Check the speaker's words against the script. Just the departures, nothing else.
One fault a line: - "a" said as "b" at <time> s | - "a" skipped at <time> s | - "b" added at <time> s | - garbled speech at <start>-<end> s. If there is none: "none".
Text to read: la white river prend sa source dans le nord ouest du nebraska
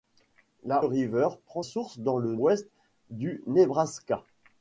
- "white" skipped at 0.8 s
- "sa" skipped at 1.6 s
- "nord" skipped at 2.4 s